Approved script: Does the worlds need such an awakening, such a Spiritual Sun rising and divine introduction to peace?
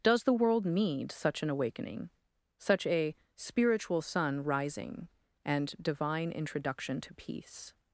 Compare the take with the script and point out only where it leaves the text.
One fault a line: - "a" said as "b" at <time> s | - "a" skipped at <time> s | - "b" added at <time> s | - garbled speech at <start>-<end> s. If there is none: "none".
- "worlds" said as "world" at 0.3 s